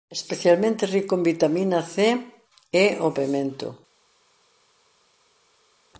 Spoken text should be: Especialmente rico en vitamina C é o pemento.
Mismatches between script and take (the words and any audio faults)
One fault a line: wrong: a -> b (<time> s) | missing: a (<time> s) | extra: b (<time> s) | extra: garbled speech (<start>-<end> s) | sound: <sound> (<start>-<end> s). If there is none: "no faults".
no faults